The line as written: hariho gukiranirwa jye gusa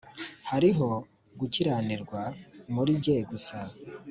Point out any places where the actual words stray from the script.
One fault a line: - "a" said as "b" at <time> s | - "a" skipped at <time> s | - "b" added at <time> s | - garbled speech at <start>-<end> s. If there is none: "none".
- "muri" added at 2.7 s